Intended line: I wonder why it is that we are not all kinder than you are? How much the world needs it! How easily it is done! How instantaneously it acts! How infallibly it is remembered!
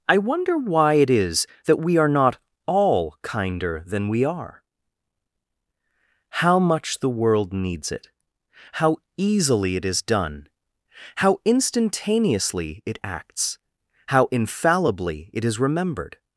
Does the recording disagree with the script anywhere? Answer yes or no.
yes